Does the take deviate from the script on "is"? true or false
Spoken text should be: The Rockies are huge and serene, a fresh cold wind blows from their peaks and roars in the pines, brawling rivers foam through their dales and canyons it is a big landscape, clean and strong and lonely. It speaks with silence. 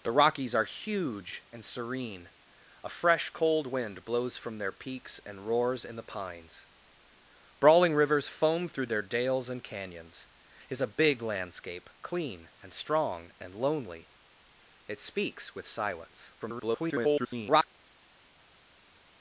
false